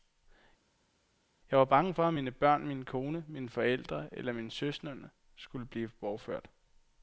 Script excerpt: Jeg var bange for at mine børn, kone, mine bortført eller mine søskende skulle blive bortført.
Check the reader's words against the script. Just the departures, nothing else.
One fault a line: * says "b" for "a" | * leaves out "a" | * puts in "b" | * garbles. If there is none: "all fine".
* puts in "min"
* says "forældre" for "bortført"